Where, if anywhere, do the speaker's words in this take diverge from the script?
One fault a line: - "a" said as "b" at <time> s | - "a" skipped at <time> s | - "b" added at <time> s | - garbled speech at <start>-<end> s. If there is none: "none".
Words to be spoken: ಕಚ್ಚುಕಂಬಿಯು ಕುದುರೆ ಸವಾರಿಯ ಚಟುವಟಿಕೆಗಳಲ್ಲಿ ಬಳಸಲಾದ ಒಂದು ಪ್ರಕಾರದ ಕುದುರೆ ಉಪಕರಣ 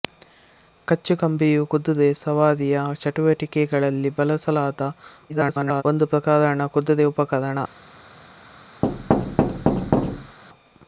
- garbled speech at 5.3-5.8 s